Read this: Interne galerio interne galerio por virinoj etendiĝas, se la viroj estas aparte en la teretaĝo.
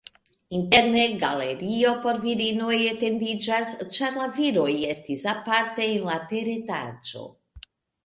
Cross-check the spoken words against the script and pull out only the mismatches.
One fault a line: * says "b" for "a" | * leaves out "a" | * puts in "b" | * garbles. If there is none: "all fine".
* leaves out "interne galerio"
* says "ĉar" for "se"
* says "estis" for "estas"